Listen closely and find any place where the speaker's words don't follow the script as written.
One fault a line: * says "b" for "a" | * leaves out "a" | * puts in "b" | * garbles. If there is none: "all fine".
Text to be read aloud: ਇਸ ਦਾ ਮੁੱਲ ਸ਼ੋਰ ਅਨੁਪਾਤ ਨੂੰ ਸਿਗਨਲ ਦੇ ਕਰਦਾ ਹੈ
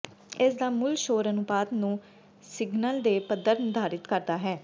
* puts in "ਪੱਧਰ ਨਿਰਧਾਰਿਤ"